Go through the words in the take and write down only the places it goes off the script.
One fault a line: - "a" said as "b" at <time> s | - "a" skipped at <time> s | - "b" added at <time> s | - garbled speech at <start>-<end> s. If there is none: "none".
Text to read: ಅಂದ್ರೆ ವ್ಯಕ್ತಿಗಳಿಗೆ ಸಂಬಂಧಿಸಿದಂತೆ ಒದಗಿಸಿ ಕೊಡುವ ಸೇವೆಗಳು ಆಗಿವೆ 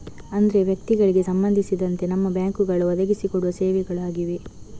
- "ನಮ್ಮ ಬ್ಯಾಂಕುಗಳು" added at 2.1 s